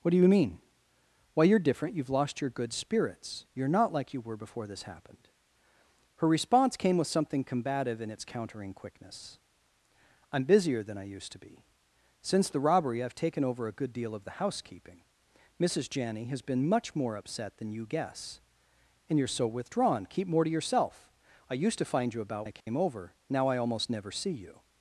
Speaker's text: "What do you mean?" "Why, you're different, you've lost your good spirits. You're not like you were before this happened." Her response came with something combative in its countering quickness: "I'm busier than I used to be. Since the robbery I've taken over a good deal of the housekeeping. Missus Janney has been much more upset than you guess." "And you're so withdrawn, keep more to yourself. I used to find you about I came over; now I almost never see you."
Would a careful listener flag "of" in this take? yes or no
no